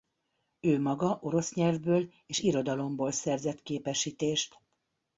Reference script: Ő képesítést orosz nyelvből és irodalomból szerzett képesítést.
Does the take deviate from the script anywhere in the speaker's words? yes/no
yes